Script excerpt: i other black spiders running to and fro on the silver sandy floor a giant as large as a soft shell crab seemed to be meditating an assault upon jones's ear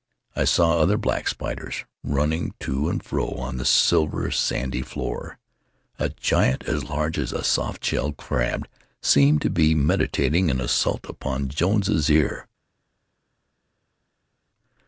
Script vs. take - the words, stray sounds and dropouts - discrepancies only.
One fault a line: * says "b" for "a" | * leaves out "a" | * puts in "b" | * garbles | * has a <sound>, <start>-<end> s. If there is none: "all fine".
* puts in "saw"